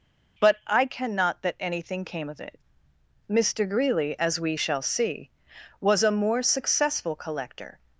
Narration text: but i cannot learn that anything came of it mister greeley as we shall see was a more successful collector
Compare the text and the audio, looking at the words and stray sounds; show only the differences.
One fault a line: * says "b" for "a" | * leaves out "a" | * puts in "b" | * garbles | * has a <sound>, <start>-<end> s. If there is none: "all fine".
* leaves out "learn"